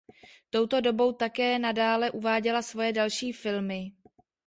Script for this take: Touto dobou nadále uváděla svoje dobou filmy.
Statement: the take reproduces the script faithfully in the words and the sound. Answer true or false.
false